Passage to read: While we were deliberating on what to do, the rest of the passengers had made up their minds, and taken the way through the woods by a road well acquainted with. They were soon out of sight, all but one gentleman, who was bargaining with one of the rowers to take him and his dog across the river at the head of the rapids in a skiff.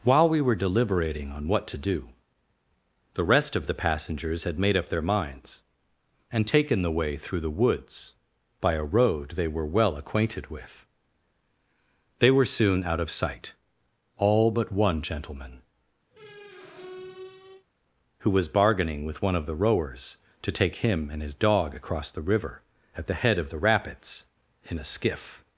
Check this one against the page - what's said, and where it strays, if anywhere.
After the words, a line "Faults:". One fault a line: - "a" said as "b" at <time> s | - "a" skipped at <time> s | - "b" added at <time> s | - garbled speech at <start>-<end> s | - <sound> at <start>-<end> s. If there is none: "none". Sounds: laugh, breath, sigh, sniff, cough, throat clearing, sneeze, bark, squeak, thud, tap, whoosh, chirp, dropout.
While we were deliberating on what to do, the rest of the passengers had made up their minds, and taken the way through the woods by a road they were well acquainted with. They were soon out of sight, all but one gentleman, who was bargaining with one of the rowers to take him and his dog across the river at the head of the rapids in a skiff.
Faults:
- "they were" added at 9.3 s
- squeak at 16.1-17.7 s